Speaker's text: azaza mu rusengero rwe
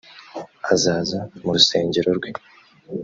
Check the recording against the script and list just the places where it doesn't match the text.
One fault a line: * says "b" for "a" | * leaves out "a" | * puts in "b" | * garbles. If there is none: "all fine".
all fine